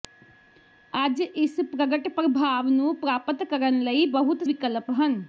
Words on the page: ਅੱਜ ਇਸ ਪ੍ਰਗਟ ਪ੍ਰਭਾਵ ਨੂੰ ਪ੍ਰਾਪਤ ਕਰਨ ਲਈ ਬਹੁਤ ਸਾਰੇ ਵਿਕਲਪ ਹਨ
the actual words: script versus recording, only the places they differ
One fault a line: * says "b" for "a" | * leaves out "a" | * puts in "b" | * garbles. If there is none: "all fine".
* leaves out "ਸਾਰੇ"